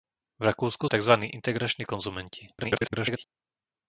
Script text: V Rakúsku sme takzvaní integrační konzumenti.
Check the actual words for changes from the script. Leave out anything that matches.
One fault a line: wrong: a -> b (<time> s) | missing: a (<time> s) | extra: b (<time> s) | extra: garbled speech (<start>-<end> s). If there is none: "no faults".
missing: sme (0.9 s)
extra: garbled speech (2.6-3.2 s)